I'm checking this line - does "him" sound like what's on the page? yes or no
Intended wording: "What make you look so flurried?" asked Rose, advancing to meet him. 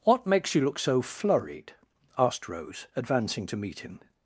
yes